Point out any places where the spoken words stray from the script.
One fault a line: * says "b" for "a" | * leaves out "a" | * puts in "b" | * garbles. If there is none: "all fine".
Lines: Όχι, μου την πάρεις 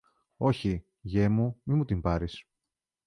* puts in "γιε μου μη"